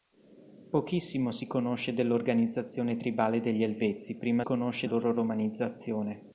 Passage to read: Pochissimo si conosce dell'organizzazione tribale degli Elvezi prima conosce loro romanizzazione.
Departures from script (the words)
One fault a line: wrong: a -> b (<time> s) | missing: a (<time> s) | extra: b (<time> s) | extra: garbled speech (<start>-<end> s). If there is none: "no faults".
no faults